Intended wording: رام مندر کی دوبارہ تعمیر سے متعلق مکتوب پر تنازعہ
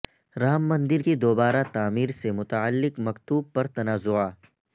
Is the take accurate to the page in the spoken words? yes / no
yes